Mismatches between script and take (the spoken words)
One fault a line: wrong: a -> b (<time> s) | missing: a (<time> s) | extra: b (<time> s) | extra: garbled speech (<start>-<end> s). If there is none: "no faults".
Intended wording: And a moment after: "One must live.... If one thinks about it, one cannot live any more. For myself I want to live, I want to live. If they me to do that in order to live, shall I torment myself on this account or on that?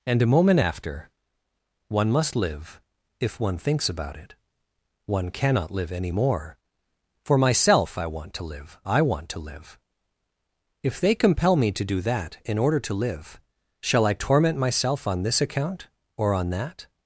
extra: compel (11.1 s)